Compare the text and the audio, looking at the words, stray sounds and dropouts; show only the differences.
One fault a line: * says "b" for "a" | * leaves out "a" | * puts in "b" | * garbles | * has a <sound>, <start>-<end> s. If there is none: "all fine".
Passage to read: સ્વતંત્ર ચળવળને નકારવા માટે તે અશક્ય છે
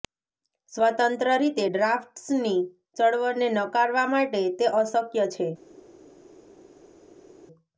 * puts in "રીતે ડ્રાફ્ટ્સની"